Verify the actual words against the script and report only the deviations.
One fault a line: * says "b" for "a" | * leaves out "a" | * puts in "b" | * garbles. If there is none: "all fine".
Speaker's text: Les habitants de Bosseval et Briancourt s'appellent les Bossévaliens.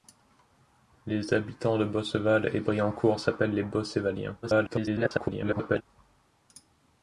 * garbles